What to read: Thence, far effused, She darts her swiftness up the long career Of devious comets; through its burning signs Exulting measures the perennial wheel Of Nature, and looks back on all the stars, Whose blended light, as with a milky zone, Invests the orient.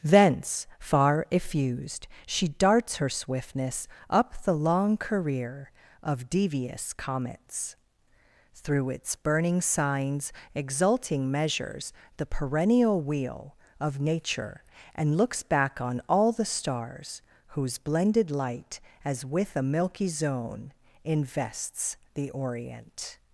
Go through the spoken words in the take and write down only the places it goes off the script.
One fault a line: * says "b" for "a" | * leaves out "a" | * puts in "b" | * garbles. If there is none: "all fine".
all fine